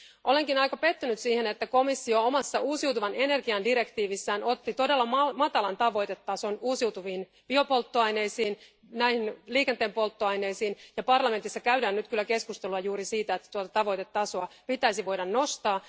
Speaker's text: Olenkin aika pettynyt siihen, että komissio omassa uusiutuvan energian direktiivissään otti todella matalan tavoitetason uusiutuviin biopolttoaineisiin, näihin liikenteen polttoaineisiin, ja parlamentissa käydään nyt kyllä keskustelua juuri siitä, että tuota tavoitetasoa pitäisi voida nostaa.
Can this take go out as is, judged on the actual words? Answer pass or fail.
pass